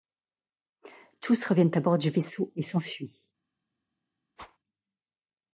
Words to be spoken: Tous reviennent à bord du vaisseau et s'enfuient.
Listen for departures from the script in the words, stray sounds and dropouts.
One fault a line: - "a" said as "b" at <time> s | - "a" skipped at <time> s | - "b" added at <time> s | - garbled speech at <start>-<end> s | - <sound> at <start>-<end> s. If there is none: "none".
- whoosh at 4.4-4.6 s